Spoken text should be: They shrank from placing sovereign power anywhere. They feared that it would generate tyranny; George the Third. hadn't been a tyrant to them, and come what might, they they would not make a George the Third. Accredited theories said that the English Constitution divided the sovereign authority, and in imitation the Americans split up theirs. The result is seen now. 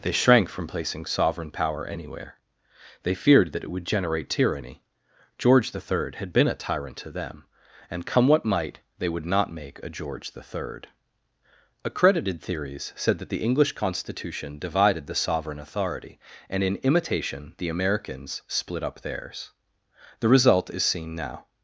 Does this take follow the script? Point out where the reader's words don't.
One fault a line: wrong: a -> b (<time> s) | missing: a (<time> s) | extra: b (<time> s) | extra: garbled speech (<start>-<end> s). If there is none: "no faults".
wrong: hadn't -> had (6.2 s)
missing: they (9.1 s)